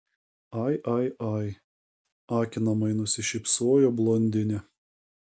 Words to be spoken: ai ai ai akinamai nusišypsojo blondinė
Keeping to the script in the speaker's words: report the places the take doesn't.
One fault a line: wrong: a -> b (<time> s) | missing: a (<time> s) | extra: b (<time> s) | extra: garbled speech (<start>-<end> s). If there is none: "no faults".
no faults